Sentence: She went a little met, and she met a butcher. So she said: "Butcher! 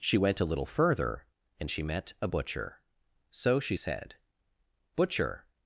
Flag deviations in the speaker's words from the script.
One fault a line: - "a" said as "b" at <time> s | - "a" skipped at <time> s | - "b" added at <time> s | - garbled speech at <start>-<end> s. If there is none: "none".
- "met" said as "further" at 0.7 s